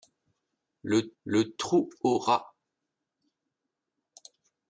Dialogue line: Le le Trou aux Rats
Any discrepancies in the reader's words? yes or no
no